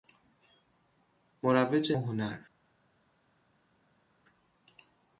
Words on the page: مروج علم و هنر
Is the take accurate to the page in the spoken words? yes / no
no